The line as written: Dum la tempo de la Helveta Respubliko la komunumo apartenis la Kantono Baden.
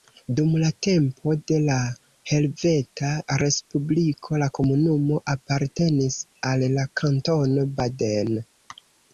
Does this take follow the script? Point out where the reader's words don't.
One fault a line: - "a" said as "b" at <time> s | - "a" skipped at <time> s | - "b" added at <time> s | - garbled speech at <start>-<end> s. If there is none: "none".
- "al" added at 6.5 s